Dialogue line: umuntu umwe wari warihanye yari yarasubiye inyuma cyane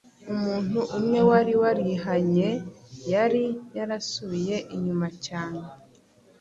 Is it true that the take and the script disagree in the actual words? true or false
false